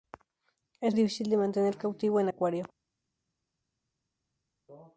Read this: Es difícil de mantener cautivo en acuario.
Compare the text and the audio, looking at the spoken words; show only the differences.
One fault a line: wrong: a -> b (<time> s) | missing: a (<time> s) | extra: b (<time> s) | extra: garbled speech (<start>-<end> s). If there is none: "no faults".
no faults